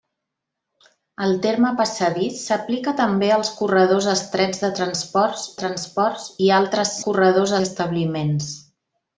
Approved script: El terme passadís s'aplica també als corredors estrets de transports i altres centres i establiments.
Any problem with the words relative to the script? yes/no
yes